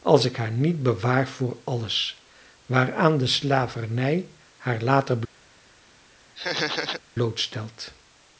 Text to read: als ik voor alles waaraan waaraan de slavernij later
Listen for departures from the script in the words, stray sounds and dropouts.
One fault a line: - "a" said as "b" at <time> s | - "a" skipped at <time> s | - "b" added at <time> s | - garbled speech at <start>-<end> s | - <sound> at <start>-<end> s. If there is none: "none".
- "haar niet bewaar" added at 0.4 s
- "waaraan" skipped at 3.2 s
- "haar" added at 4.6 s
- laugh at 6.4-7.0 s